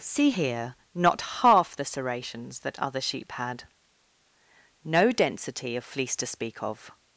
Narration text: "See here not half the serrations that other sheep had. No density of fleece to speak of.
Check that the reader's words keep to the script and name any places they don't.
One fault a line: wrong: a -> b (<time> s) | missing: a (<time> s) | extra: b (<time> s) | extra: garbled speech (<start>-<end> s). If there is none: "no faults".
no faults